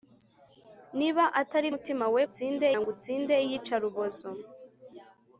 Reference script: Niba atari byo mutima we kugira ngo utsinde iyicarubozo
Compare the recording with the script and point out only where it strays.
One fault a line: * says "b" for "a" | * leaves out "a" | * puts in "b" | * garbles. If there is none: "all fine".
* leaves out "byo"
* says "utsinde" for "kugira"